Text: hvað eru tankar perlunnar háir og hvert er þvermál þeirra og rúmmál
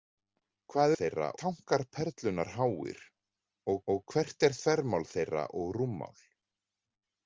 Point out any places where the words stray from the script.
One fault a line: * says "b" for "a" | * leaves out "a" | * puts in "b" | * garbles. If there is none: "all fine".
* says "þeirra" for "eru"
* puts in "og"